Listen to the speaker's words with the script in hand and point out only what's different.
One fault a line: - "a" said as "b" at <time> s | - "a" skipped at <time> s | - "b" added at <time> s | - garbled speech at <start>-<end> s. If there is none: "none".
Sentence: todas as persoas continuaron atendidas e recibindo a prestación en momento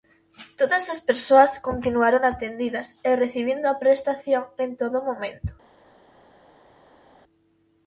- "todo" added at 4.8 s